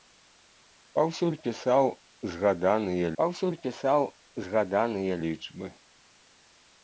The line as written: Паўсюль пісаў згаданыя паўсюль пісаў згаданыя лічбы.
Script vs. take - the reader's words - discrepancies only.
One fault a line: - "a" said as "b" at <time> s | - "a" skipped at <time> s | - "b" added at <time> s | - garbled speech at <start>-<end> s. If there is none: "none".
none